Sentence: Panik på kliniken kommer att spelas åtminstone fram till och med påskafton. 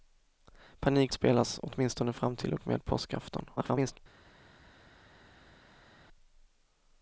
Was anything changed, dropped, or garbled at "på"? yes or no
yes